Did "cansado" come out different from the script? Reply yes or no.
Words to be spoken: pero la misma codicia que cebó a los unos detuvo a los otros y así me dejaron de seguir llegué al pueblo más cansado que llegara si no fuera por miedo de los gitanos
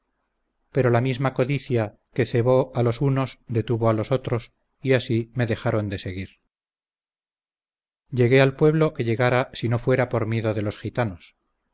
yes